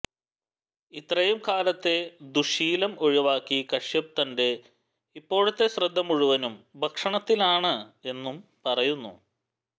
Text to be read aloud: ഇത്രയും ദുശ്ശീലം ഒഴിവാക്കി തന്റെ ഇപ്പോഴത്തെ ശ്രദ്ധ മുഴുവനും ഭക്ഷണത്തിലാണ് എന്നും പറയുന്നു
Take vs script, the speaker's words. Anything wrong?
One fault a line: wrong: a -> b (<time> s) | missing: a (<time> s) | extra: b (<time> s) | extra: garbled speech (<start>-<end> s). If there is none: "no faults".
extra: കാലത്തെ (1.5 s)
extra: കശ്യപ് (3.7 s)